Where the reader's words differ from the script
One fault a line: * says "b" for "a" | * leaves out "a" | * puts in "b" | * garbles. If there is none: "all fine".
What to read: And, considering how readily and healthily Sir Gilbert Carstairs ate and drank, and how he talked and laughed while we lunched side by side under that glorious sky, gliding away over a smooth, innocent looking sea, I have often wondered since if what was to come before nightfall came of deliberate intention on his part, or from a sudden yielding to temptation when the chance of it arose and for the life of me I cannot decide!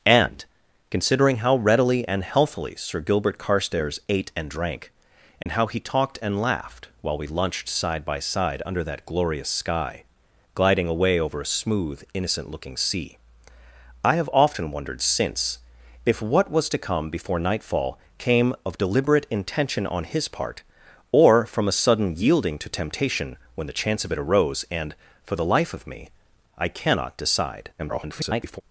* garbles